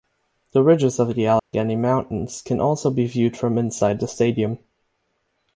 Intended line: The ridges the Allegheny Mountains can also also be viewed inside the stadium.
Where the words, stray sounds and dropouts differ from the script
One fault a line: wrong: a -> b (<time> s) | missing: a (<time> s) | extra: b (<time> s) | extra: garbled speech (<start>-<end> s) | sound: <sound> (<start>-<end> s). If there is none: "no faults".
extra: of (1.0 s)
sound: dropout (1.4-1.5 s)
missing: also (2.9 s)
extra: from (3.4 s)